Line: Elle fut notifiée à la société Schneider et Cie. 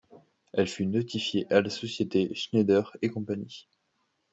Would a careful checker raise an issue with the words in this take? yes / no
no